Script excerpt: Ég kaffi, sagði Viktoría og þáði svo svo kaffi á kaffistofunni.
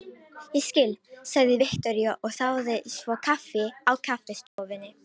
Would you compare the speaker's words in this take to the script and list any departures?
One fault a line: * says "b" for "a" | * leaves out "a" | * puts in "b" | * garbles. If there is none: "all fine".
* says "skil" for "kaffi"
* leaves out "svo"